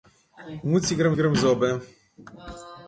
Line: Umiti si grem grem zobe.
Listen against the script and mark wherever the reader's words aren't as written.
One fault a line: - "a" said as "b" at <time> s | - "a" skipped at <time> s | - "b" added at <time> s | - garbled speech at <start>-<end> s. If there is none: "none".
none